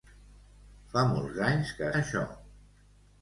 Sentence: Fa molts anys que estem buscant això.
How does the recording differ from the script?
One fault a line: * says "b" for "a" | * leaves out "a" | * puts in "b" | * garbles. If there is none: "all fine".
* leaves out "estem buscant"